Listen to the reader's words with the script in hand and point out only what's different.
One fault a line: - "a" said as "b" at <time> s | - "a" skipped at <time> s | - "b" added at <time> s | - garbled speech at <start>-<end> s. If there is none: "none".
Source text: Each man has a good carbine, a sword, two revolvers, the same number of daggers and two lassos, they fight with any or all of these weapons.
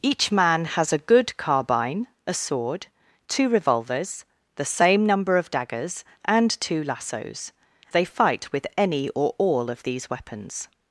none